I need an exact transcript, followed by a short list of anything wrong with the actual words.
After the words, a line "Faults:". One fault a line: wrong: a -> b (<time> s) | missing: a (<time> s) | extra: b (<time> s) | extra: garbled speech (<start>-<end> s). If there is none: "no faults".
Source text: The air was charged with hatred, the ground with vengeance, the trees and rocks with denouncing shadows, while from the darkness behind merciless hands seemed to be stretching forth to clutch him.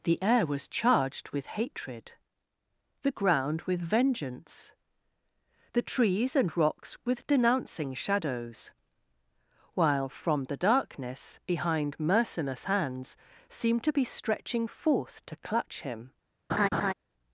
The air was charged with hatred, the ground with vengeance, the trees and rocks with denouncing shadows, while from the darkness behind merciless hands seemed to be stretching forth to clutch him.
Faults:
no faults